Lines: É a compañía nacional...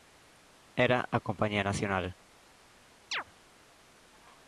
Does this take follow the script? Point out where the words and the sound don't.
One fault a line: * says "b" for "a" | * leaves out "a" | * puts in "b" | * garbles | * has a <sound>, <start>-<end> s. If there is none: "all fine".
* says "Era" for "É"
* has a chirp, 3.1-3.2 s